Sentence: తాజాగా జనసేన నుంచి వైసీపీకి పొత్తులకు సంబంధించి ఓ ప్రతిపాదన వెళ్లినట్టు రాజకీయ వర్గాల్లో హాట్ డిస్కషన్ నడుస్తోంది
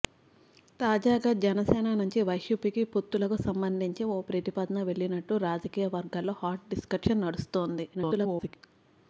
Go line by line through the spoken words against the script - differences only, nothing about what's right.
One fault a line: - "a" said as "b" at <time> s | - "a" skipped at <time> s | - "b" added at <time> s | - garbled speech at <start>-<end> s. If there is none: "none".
- garbled speech at 7.9-8.6 s